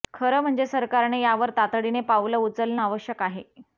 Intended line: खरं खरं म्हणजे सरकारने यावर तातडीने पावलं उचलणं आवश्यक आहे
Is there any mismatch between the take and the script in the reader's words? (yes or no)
yes